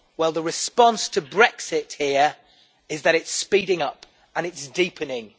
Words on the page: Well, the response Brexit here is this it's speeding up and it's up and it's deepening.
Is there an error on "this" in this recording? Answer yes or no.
yes